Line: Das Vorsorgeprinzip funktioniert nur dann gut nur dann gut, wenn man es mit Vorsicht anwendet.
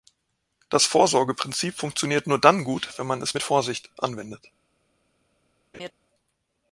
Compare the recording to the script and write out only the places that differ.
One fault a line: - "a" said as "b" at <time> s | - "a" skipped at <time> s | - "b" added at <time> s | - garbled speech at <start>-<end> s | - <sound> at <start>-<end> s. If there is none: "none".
- "nur dann gut" skipped at 2.9 s
- laugh at 5.7-5.9 s